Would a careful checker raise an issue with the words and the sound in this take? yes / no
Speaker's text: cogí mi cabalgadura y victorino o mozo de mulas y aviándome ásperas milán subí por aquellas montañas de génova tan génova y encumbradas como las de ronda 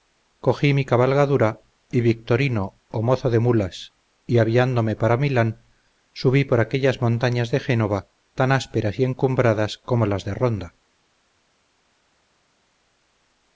yes